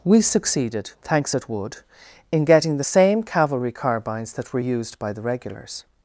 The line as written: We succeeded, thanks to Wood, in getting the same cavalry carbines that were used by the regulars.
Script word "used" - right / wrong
right